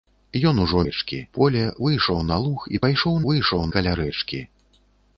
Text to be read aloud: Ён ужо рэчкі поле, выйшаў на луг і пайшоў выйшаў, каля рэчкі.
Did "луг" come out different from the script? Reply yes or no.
no